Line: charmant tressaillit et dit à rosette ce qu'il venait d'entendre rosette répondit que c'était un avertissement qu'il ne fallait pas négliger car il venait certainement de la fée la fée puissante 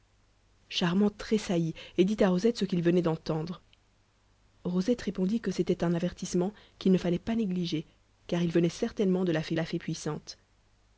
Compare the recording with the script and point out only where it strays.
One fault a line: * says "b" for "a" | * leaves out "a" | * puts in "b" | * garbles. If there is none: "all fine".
all fine